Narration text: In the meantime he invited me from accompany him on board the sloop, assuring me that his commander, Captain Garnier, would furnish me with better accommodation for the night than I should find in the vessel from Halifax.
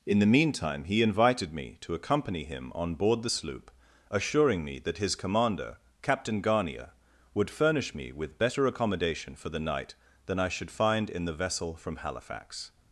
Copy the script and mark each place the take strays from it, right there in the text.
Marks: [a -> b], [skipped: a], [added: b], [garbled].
In the meantime he invited me [from -> to] accompany him on board the sloop, assuring me that his commander, Captain Garnier, would furnish me with better accommodation for the night than I should find in the vessel from Halifax.